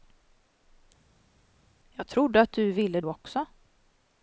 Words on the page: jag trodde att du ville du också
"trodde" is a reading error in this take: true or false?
false